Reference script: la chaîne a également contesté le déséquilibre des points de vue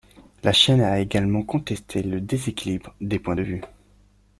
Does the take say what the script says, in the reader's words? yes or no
yes